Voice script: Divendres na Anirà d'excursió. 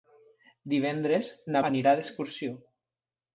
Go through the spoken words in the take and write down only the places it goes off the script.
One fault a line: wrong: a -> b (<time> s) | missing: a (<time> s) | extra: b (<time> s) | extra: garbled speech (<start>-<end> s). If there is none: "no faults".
no faults